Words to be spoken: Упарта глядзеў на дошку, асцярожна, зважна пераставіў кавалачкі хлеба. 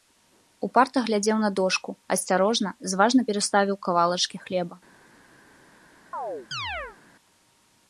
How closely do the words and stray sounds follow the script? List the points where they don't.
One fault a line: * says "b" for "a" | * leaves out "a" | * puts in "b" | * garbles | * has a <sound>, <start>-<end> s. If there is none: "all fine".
* has a chirp, 6.1-7.0 s